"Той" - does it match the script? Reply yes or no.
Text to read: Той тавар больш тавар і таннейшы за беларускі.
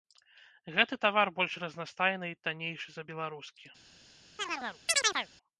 no